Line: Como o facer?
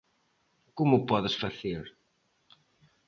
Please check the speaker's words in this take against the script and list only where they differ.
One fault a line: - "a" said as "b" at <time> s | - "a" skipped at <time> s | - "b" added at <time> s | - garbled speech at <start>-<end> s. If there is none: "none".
- "podes" added at 1.1 s